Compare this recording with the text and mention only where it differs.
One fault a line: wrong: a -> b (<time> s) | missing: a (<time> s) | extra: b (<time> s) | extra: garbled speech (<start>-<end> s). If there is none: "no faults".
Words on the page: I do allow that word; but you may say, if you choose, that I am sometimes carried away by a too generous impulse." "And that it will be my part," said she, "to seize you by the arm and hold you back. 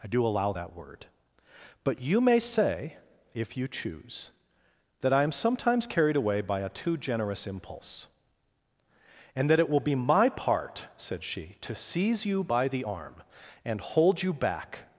no faults